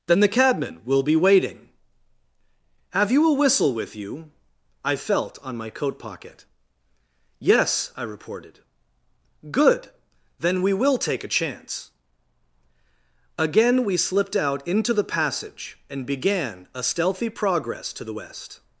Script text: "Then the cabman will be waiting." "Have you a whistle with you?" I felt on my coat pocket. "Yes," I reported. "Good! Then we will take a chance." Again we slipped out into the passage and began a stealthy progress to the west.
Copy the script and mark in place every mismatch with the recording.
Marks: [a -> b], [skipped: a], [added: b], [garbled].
"Then the cabman will be waiting." "Have you a whistle with you?" I felt on my coat pocket. "Yes," I reported. "Good! Then we will take a chance." Again we slipped out into the passage and began a stealthy progress to the west.